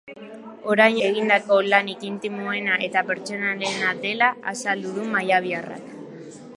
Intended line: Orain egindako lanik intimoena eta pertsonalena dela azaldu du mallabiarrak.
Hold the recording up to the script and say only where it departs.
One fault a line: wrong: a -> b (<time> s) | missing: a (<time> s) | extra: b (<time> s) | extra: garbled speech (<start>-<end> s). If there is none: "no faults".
no faults